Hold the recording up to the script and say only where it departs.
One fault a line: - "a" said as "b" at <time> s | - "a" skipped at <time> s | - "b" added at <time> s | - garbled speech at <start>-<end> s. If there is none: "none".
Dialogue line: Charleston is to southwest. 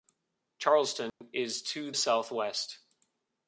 none